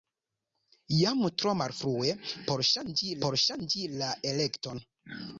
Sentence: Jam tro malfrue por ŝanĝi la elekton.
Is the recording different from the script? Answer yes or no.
yes